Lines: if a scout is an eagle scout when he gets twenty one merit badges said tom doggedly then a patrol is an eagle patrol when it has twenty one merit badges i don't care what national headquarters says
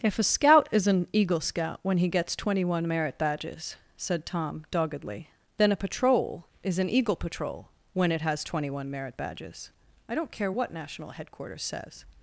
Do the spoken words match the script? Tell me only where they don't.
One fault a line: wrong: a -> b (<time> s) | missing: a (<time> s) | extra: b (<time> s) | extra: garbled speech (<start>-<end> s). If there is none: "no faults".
no faults